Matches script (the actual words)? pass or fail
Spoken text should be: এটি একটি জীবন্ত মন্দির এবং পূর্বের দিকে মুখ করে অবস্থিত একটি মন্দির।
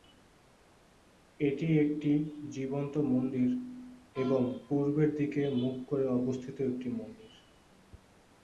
pass